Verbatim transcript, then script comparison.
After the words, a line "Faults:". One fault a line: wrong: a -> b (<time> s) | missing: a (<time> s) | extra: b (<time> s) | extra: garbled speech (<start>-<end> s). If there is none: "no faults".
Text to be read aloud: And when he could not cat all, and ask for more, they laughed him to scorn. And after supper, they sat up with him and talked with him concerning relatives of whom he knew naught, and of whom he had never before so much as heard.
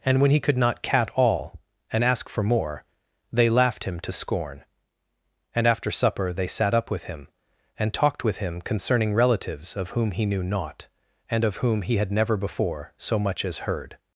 And when he could not cat all, and ask for more, they laughed him to scorn. And after supper, they sat up with him and talked with him concerning relatives of whom he knew naught, and of whom he had never before so much as heard.
Faults:
no faults